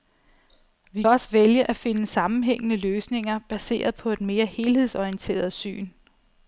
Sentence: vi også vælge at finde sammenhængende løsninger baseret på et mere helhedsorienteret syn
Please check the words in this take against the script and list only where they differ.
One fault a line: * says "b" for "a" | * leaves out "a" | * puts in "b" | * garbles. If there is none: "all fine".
all fine